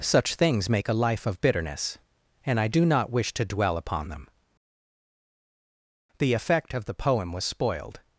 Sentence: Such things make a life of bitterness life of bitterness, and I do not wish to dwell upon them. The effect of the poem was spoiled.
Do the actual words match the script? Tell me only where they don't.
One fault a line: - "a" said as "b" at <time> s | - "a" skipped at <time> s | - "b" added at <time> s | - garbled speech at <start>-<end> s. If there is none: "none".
- "life of bitterness" skipped at 2.0 s